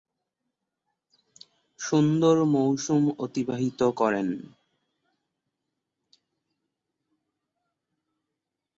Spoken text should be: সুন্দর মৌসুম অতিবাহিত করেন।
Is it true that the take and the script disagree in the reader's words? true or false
false